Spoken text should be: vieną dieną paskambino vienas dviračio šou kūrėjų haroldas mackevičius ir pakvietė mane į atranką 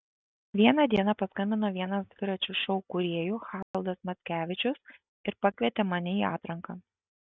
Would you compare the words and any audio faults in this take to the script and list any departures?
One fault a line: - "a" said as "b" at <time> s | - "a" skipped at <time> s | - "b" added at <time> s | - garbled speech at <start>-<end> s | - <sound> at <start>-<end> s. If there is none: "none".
- dropout at 3.6-3.7 s